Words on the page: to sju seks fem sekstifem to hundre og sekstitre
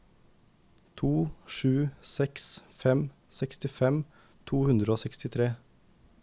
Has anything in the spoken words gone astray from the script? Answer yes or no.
no